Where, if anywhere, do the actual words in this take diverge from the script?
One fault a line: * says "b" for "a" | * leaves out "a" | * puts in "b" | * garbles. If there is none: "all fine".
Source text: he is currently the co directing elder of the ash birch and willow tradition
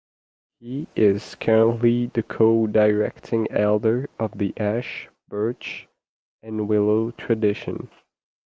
all fine